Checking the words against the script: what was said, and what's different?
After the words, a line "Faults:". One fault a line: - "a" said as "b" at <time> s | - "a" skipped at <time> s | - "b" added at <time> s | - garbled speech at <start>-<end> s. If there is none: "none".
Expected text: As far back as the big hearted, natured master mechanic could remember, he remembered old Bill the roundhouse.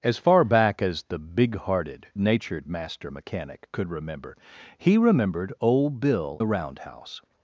As far back as the big hearted, natured master mechanic could remember, he remembered old Bill the roundhouse.
Faults:
none